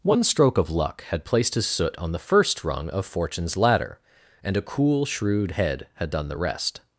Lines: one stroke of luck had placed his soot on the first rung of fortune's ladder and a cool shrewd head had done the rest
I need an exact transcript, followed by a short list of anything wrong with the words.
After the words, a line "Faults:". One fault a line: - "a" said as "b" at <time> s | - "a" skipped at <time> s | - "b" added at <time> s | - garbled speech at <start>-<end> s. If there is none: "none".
one stroke of luck had placed his soot on the first rung of fortune's ladder and a cool shrewd head had done the rest
Faults:
none